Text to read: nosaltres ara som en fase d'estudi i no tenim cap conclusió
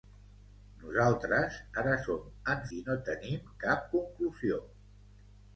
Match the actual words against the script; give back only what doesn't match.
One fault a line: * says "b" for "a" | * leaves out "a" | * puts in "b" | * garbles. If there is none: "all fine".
* leaves out "fase d'estudi"